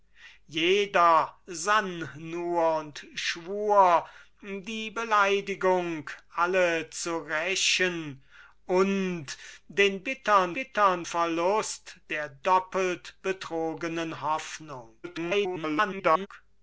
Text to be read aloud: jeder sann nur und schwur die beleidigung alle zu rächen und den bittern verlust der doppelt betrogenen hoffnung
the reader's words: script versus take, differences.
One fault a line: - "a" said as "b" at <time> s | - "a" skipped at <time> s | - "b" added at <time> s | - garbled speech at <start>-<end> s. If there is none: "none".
- "bittern" added at 10.5 s
- garbled speech at 15.0-16.3 s